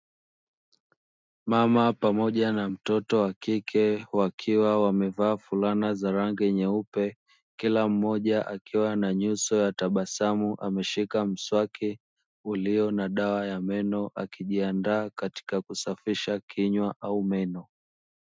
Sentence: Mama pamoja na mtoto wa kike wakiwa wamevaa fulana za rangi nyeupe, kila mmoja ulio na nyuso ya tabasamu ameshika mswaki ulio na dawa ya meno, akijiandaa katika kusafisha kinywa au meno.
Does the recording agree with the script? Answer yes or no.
no